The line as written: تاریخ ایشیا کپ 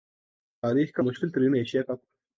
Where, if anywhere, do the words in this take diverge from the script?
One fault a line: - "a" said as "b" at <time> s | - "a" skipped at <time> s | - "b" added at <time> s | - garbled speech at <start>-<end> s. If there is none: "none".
- "کا مشکل ترین" added at 0.9 s